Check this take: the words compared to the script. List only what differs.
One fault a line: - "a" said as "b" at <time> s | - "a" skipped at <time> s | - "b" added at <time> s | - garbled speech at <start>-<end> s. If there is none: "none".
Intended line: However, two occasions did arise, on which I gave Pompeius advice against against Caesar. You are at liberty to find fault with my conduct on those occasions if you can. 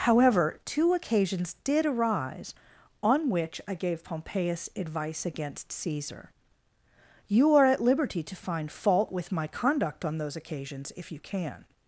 - "against" skipped at 5.7 s